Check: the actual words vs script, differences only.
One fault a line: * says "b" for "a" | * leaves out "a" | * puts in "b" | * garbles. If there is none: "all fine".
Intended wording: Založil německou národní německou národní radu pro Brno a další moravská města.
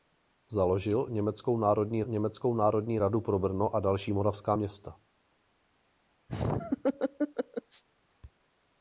all fine